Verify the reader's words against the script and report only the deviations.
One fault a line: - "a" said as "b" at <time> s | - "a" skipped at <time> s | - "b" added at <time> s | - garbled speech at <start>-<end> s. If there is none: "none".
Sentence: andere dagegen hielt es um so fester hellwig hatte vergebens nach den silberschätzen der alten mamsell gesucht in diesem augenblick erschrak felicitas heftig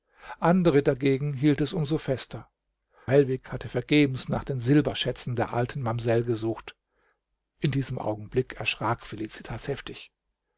none